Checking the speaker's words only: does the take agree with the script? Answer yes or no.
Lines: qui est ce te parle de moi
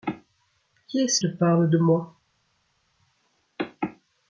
yes